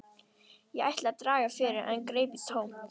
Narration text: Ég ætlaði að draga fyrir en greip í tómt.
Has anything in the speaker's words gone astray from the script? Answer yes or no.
no